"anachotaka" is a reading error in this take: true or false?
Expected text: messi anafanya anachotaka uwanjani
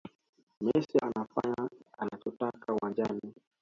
false